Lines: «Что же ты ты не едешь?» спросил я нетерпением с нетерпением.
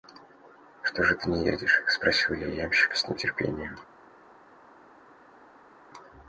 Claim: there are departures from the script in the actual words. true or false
true